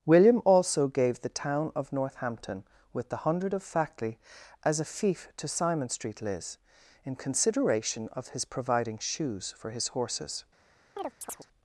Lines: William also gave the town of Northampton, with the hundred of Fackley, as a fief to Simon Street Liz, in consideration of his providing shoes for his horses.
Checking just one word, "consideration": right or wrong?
right